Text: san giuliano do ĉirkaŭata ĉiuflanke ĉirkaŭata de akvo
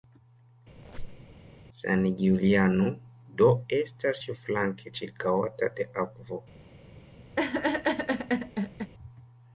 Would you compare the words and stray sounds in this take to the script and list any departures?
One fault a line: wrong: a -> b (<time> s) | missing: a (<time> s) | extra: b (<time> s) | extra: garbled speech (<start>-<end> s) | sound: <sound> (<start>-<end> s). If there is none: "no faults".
sound: squeak (0.7-1.3 s)
wrong: ĉirkaŭata -> estas (3.8 s)
sound: laugh (7.4-8.9 s)